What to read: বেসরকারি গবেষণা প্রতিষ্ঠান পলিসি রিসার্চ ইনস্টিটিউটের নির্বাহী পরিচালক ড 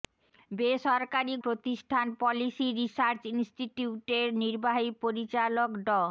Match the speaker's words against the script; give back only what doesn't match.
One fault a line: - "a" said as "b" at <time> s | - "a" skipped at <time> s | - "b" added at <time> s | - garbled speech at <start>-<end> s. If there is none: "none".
- "গবেষণা" skipped at 1.4 s